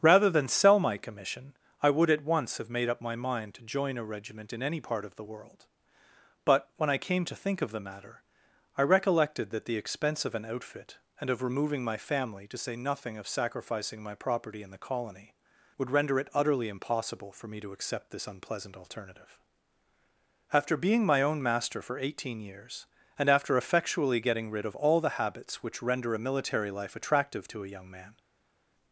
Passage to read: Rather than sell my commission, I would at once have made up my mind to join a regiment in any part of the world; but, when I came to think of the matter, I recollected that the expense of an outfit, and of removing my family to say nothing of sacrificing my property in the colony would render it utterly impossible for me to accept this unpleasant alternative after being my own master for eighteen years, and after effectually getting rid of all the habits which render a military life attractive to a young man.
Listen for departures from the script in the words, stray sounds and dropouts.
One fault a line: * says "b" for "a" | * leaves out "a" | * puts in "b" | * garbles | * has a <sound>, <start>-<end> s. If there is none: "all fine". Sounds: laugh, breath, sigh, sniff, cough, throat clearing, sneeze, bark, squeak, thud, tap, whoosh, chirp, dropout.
all fine